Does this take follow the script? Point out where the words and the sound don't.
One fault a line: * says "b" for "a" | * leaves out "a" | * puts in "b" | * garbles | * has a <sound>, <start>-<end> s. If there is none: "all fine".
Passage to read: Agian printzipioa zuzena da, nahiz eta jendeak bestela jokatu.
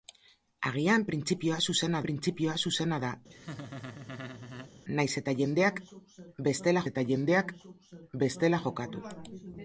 * puts in "printzipioa zuzena"
* has a laugh, 3.3-4.7 s
* puts in "eta jendeak bestela"